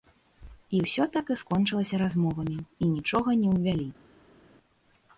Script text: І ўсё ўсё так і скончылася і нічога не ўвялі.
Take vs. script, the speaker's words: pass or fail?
fail